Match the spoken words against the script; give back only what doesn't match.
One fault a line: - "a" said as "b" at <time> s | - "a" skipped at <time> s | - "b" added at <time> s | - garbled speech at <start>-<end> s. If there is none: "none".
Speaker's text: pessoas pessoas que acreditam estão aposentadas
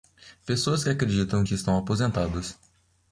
- "pessoas" skipped at 0.8 s
- "que" added at 1.4 s